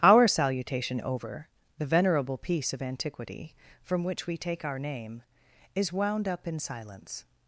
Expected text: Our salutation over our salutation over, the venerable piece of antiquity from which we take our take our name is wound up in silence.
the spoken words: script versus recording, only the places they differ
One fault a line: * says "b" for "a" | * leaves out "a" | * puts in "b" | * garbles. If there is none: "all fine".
* leaves out "our salutation over"
* leaves out "take our"